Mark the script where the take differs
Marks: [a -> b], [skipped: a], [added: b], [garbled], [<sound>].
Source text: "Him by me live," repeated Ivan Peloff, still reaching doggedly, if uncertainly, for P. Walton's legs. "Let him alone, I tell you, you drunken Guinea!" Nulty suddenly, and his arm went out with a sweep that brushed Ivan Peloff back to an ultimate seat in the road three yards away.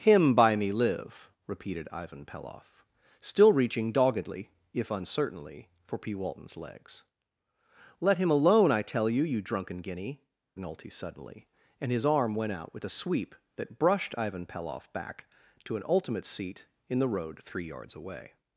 "Him by me live," repeated Ivan Peloff, still reaching doggedly, if uncertainly, for P. Walton's legs. "Let him alone, I tell you, you drunken Guinea!" Nulty suddenly, and his arm went out with a sweep that brushed Ivan Peloff back to an ultimate seat in the road three yards away.